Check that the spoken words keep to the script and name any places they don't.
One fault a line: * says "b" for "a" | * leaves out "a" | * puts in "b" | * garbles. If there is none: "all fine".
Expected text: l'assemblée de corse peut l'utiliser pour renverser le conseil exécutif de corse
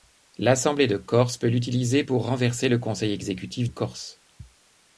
* leaves out "de"